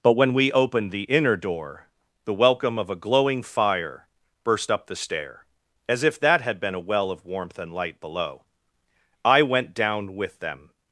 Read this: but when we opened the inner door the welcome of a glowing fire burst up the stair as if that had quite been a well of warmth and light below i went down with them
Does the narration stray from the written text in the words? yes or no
yes